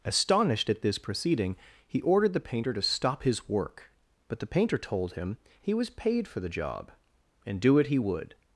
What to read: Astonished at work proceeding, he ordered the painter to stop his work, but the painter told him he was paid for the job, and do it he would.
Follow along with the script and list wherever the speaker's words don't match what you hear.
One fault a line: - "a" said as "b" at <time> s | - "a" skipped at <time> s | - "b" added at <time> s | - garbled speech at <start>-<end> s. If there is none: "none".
- "work" said as "this" at 0.8 s